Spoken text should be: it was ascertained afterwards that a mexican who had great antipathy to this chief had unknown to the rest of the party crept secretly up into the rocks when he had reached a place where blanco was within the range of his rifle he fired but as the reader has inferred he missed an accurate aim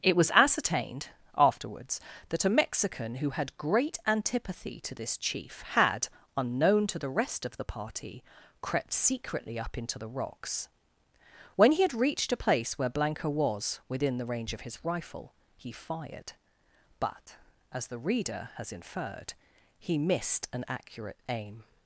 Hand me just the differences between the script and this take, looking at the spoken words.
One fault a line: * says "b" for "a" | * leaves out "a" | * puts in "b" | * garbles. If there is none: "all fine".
all fine